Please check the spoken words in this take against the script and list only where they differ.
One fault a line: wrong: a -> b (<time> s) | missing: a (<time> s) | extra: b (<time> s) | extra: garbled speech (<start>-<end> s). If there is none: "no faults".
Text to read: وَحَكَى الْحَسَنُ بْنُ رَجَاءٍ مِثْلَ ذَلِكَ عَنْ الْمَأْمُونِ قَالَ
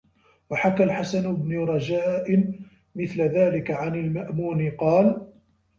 no faults